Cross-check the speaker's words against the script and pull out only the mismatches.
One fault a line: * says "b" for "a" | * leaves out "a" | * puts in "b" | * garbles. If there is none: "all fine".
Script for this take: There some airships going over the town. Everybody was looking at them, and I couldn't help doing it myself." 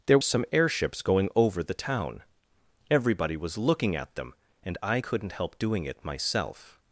all fine